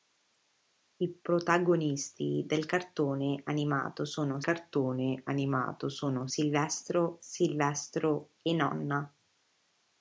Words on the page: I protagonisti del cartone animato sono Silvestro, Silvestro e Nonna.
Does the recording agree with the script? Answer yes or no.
no